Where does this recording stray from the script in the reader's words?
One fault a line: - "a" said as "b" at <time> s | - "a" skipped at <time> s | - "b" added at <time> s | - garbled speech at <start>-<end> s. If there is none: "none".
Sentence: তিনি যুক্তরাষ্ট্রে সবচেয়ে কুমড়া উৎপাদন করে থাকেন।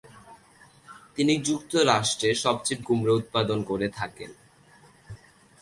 none